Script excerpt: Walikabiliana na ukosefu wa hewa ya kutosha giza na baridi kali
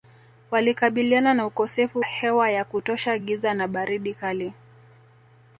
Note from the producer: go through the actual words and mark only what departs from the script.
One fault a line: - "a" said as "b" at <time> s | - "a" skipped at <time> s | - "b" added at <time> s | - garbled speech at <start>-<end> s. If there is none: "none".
- "wa" skipped at 2.0 s